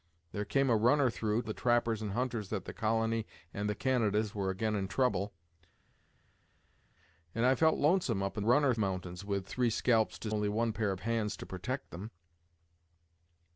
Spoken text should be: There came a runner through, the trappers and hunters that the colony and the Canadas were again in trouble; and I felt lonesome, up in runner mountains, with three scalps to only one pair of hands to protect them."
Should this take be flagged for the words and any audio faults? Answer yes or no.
no